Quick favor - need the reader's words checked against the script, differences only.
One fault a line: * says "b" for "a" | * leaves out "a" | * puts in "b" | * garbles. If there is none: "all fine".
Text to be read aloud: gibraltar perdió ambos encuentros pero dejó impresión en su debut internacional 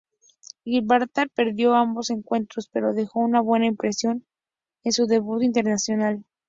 * puts in "una buena"